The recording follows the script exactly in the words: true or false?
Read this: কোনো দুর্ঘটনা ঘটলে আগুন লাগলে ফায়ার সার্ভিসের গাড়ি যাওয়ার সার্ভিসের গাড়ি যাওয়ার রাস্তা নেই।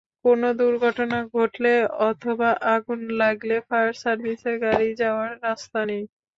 false